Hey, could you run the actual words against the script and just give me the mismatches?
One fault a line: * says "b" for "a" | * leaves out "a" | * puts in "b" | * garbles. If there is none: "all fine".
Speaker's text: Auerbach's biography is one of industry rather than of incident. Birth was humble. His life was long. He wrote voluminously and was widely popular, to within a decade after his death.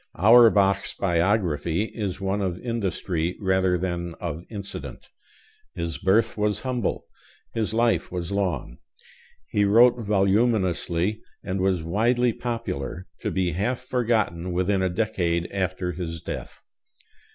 * puts in "His"
* puts in "be half forgotten"